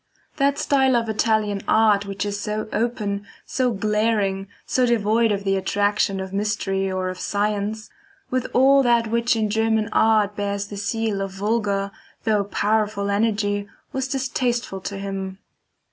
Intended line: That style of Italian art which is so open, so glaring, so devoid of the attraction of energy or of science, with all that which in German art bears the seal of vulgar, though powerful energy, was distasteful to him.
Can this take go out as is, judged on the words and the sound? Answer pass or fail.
fail